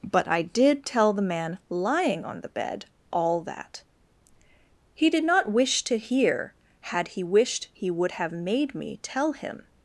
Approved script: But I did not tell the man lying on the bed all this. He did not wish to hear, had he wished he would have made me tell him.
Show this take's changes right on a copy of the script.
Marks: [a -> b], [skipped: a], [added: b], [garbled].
But I did [skipped: not] tell the man lying on the bed all [this. -> that] He did not wish to hear, had he wished he would have made me tell him.